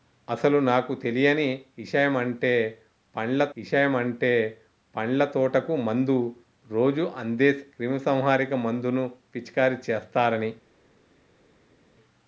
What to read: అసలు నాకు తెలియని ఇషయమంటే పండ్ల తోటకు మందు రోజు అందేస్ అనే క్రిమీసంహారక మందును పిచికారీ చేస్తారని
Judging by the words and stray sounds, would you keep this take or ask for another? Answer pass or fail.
fail